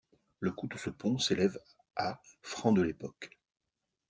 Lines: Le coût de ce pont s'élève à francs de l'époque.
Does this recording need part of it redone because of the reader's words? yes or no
no